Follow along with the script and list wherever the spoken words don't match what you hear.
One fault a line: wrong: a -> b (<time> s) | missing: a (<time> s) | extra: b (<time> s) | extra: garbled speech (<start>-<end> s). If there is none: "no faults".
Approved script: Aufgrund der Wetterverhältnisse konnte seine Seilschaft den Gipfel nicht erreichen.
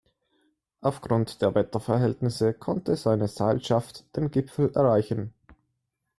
missing: nicht (4.7 s)